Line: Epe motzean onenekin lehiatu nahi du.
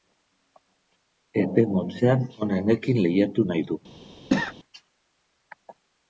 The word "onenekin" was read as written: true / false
true